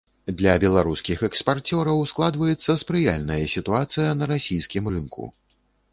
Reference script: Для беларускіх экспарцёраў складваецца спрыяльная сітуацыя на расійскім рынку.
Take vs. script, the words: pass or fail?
pass